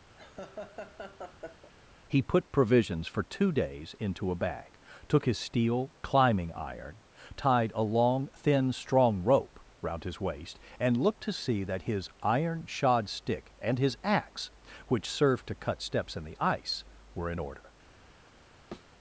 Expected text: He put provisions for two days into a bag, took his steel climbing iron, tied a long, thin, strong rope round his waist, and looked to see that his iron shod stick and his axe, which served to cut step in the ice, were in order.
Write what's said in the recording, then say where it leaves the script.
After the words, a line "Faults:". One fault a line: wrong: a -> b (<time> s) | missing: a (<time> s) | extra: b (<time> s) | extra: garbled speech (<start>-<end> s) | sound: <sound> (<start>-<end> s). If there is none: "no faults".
He put provisions for two days into a bag, took his steel climbing iron, tied a long, thin, strong rope round his waist, and looked to see that his iron shod stick and his axe, which served to cut steps in the ice, were in order.
Faults:
sound: laugh (0.2-1.7 s)
wrong: step -> steps (15.8 s)
sound: thud (18.7-18.9 s)